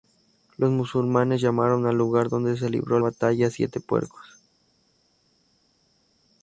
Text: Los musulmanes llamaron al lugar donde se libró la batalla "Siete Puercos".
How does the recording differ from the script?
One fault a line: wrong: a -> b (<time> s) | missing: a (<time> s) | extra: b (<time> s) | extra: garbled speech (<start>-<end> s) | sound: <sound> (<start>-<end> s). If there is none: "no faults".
missing: la (3.0 s)